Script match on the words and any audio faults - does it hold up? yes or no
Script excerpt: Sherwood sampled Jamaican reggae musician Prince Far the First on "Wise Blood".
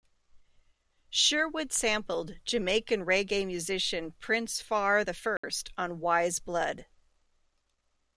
no